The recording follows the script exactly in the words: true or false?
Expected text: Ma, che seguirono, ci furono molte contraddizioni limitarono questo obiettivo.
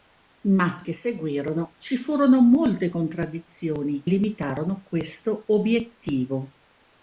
true